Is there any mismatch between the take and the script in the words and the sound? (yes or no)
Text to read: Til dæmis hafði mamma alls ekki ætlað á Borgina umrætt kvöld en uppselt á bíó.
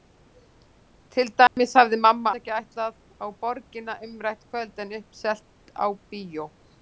yes